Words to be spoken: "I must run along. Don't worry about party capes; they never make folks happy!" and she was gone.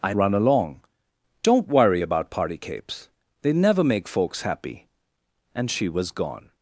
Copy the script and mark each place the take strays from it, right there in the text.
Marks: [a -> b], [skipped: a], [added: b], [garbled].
"I [skipped: must] run along. Don't worry about party capes; they never make folks happy!" and she was gone.